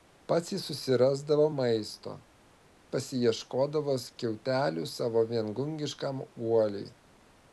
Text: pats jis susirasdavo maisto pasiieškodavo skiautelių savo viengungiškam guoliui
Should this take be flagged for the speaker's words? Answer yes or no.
no